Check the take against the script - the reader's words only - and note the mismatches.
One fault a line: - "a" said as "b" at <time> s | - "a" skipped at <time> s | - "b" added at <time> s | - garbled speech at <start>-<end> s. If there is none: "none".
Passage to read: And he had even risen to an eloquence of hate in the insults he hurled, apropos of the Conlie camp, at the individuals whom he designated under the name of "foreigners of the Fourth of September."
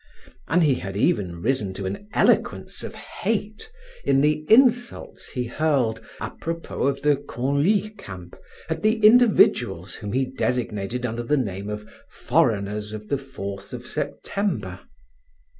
none